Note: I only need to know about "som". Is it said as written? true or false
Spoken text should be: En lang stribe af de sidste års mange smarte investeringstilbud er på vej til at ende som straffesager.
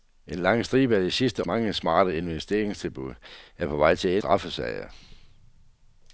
false